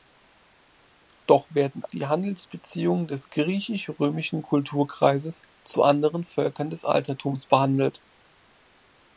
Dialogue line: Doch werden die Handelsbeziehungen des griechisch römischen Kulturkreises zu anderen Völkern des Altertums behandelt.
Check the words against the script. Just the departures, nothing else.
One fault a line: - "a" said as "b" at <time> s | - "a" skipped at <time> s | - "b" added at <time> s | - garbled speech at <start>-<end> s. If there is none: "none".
none